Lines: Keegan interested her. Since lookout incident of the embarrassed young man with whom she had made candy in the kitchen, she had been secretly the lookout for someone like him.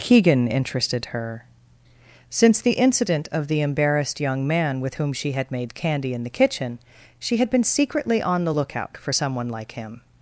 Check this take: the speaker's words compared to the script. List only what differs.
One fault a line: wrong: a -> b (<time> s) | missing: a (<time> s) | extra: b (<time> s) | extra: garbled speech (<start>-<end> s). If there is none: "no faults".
wrong: lookout -> the (2.6 s)
extra: on (8.2 s)